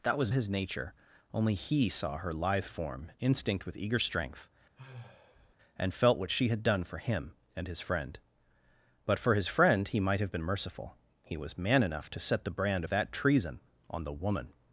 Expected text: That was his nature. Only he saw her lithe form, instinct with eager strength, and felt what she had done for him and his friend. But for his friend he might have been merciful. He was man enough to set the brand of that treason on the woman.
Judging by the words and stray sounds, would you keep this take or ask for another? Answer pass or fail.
fail